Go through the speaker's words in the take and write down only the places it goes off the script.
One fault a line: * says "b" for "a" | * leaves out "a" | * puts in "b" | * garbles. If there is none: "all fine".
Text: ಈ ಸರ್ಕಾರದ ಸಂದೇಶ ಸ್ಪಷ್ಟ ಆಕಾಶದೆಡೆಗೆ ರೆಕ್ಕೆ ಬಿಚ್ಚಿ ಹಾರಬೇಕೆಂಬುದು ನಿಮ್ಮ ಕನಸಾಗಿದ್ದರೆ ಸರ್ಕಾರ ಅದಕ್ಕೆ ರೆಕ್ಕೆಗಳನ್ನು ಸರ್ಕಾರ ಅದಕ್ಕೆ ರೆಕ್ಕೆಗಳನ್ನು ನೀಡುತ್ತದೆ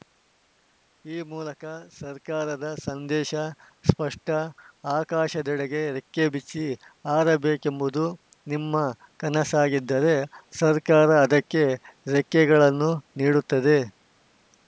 * puts in "ಮೂಲಕ"
* leaves out "ಸರ್ಕಾರ ಅದಕ್ಕೆ ರೆಕ್ಕೆಗಳನ್ನು"